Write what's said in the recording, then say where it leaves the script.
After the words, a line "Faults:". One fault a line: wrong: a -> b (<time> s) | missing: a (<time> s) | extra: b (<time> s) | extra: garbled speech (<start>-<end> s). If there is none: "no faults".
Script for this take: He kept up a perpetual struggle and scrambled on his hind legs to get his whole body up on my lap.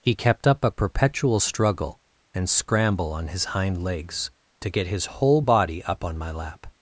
He kept up a perpetual struggle and scramble on his hind legs to get his whole body up on my lap.
Faults:
wrong: scrambled -> scramble (2.5 s)